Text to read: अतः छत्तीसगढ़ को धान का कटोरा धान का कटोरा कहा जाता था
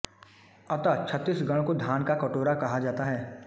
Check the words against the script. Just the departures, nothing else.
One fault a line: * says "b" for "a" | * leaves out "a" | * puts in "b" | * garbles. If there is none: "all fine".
* leaves out "धान का कटोरा"
* says "है" for "था"